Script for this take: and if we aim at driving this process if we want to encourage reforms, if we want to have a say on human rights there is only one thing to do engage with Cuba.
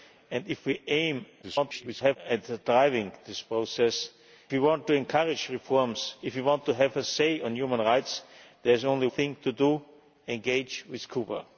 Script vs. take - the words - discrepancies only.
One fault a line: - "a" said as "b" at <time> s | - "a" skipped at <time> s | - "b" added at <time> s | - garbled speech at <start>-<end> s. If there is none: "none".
- garbled speech at 1.4-2.2 s
- "if" skipped at 4.1 s
- "one" skipped at 9.1 s